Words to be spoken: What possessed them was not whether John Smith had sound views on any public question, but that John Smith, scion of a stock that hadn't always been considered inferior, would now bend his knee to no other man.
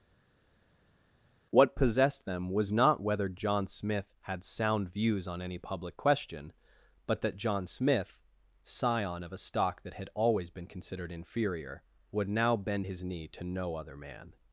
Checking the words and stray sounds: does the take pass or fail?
fail